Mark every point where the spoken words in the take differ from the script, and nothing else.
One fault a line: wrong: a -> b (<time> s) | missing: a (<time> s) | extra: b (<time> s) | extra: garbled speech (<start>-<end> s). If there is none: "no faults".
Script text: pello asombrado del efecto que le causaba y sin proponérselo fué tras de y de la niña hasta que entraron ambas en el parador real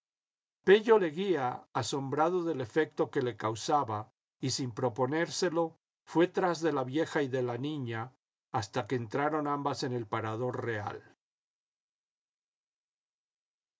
extra: leguía (0.9 s)
extra: la vieja (6.7 s)